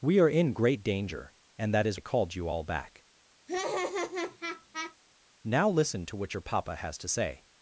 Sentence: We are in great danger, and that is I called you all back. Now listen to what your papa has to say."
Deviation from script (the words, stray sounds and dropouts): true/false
true